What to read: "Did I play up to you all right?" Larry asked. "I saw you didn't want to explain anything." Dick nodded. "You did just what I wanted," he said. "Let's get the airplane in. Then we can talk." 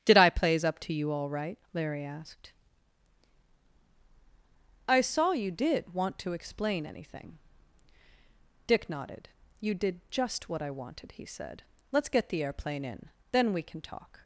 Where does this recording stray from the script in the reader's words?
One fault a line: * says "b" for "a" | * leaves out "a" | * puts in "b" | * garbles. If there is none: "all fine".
* says "plays" for "play"
* says "did" for "didn't"